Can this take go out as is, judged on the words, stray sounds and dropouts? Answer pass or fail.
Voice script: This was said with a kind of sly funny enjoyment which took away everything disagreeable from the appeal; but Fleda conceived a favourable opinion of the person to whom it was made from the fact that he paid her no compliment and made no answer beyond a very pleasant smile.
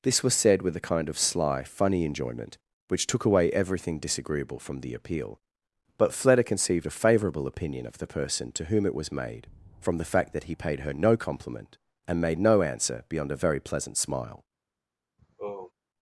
fail